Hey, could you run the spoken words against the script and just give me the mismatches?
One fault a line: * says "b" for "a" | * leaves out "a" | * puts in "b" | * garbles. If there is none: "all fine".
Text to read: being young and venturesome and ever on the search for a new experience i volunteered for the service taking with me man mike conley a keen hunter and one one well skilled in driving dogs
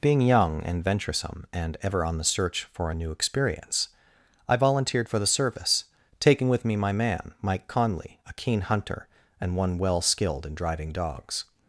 * puts in "my"
* leaves out "one"